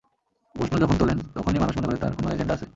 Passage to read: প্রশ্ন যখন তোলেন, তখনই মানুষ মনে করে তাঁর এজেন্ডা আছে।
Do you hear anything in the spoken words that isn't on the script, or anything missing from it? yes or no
yes